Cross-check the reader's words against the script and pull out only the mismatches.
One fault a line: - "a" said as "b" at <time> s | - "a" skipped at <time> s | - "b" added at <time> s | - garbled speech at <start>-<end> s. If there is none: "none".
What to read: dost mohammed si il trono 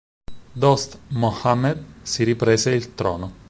- "riprese" added at 2.2 s